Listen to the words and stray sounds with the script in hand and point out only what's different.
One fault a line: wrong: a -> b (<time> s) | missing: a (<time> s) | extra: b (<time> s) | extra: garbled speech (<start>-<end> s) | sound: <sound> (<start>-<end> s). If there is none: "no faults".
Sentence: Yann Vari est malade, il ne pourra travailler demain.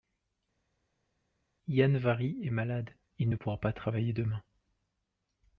extra: pas (3.6 s)